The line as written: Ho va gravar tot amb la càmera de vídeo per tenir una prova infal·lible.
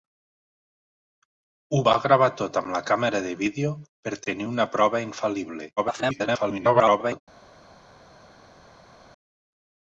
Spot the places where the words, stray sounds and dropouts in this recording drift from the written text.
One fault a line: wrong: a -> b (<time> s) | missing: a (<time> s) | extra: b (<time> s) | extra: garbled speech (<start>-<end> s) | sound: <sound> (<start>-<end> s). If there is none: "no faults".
extra: garbled speech (5.8-7.2 s)